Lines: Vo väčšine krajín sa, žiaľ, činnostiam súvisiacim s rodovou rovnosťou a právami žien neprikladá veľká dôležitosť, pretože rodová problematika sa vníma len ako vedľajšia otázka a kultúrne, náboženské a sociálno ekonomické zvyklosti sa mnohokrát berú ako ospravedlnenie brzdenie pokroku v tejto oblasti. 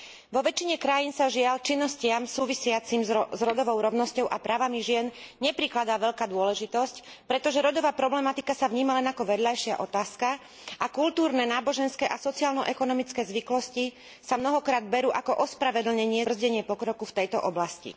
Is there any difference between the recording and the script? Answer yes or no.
no